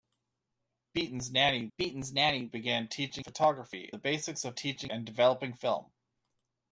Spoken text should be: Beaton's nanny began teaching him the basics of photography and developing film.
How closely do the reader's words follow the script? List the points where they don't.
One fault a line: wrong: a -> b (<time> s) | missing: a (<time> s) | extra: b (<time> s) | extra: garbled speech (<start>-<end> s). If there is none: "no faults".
extra: beaton's nanny (1.8 s)
wrong: him -> photography (3.2 s)
wrong: photography -> teaching (4.5 s)